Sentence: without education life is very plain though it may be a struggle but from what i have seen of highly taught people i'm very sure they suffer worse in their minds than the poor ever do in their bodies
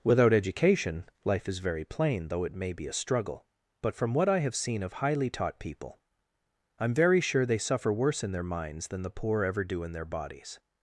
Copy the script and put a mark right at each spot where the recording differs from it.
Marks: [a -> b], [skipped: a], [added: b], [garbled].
without education life is very plain though it may be a struggle but from what i have seen of highly taught people i'm very sure they suffer worse in their minds than the poor ever do in their bodies